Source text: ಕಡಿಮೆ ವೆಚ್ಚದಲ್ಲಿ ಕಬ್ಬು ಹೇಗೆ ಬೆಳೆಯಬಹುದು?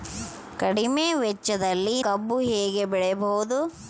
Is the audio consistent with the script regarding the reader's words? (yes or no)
yes